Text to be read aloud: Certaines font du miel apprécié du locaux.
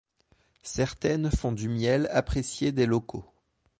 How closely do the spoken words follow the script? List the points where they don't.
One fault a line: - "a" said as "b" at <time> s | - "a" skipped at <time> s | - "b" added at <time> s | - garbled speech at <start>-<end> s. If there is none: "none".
- "du" said as "des" at 2.7 s